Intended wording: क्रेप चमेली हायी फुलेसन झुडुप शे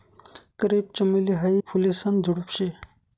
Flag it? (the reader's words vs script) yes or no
no